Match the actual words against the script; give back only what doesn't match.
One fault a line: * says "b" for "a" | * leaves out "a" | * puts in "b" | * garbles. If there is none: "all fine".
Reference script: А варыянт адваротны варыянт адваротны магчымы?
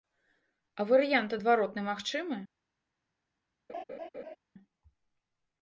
* leaves out "варыянт адваротны"